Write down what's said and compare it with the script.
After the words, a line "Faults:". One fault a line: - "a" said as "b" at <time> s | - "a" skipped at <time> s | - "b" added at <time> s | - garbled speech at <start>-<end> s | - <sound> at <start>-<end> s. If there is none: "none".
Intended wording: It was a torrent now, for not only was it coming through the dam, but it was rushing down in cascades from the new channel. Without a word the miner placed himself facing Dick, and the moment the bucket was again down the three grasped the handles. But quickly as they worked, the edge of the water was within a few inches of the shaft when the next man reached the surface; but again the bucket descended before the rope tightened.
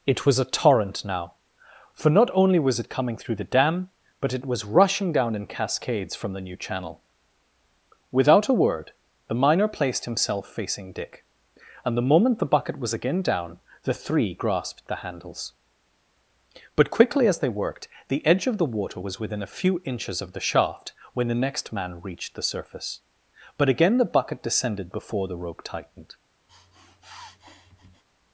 It was a torrent now, for not only was it coming through the dam, but it was rushing down in cascades from the new channel. Without a word the miner placed himself facing Dick, and the moment the bucket was again down the three grasped the handles. But quickly as they worked, the edge of the water was within a few inches of the shaft when the next man reached the surface; but again the bucket descended before the rope tightened.
Faults:
- sniff at 26.5-28.0 s